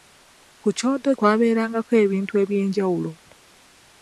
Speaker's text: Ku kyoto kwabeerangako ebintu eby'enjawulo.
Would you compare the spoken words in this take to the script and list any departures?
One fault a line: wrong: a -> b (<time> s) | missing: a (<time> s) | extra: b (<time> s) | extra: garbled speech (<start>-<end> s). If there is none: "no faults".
no faults